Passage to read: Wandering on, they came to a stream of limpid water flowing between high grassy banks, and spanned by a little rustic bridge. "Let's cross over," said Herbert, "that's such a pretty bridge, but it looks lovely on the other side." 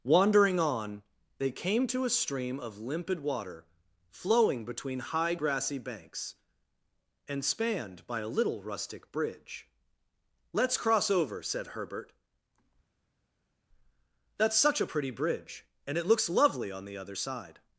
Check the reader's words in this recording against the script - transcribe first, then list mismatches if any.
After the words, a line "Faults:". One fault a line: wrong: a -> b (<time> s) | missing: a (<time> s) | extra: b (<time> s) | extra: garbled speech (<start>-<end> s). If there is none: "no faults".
Wandering on, they came to a stream of limpid water flowing between high grassy banks, and spanned by a little rustic bridge. "Let's cross over," said Herbert, "that's such a pretty bridge, and it looks lovely on the other side."
Faults:
wrong: but -> and (15.9 s)